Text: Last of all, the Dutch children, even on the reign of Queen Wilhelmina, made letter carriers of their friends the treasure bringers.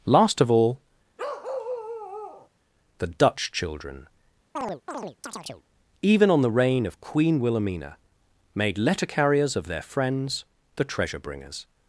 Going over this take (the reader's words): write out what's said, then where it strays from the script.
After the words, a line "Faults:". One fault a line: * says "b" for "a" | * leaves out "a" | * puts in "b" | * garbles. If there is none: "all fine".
Last of all, the Dutch children, even on the reign of Queen Wilhelmina, made letter carriers of their friends the treasure bringers.
Faults:
all fine